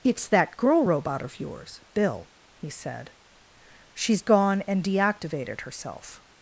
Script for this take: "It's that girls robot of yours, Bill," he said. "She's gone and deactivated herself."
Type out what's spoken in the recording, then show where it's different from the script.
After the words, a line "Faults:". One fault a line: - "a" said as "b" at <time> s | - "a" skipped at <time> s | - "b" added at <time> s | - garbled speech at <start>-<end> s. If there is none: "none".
"It's that girl robot of yours, Bill," he said. "She's gone and deactivated herself."
Faults:
- "girls" said as "girl" at 0.6 s